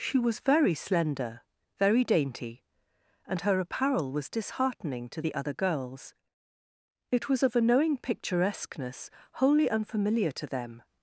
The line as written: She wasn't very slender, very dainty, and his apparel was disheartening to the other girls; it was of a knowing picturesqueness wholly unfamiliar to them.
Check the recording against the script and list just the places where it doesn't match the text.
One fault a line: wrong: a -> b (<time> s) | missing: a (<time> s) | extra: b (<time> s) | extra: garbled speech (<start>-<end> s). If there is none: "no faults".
wrong: wasn't -> was (0.2 s)
wrong: his -> her (3.4 s)